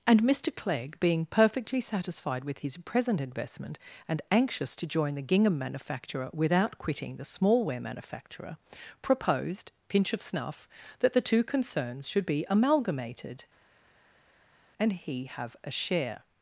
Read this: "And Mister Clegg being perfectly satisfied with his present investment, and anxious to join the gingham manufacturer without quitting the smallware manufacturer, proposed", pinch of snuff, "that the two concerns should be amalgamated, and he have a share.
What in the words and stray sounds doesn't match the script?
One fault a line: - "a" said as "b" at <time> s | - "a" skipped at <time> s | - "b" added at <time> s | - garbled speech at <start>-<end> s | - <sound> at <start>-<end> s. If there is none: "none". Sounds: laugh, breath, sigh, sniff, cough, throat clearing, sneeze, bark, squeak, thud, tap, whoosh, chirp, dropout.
none